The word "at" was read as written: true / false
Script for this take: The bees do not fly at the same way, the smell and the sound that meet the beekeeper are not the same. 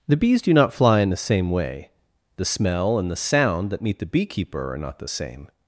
false